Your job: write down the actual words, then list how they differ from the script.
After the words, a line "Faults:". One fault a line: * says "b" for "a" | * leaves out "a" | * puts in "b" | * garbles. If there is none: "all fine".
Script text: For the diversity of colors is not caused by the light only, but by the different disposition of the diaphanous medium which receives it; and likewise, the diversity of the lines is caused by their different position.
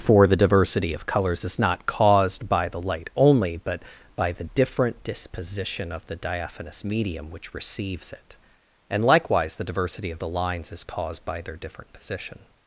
For the diversity of colors is not caused by the light only, but by the different disposition of the diaphanous medium which receives it; and likewise, the diversity of the lines is caused by their different position.
Faults:
all fine